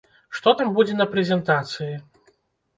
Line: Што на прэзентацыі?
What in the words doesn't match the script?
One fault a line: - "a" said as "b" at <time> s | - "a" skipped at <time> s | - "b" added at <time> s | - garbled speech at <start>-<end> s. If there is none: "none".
- "там будзе" added at 0.6 s